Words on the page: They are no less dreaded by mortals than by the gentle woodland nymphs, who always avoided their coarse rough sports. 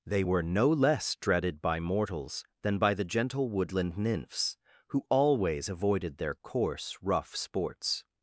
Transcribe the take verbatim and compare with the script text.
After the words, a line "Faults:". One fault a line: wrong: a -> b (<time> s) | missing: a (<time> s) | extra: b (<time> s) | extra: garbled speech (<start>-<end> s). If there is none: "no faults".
They were no less dreaded by mortals than by the gentle woodland nymphs, who always avoided their coarse rough sports.
Faults:
wrong: are -> were (0.2 s)